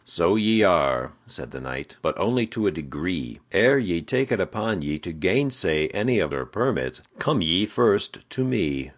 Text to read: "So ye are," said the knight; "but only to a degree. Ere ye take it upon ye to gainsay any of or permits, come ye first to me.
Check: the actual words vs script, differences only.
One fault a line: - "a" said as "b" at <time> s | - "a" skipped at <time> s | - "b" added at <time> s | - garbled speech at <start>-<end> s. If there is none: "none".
none